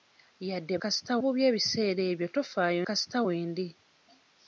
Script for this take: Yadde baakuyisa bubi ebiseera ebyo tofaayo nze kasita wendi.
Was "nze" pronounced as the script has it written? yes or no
no